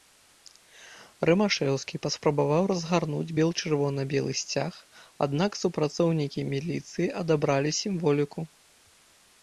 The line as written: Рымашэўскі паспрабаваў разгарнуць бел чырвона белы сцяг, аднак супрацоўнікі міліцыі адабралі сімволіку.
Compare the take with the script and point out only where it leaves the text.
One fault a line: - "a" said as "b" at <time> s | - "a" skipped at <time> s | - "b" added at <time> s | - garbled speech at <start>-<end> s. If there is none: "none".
none